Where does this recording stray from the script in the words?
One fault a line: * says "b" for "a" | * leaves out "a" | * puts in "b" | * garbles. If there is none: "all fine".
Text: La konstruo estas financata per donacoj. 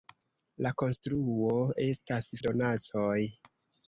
* leaves out "financata per"